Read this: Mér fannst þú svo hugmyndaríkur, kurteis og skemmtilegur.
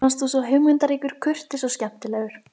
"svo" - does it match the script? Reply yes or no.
yes